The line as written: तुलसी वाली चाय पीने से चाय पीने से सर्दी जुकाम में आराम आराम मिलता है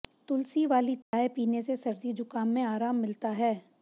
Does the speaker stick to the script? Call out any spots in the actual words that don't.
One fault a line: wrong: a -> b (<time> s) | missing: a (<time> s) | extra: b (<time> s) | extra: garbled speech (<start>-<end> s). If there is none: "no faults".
missing: चाय पीने से (1.8 s)
missing: आराम (3.0 s)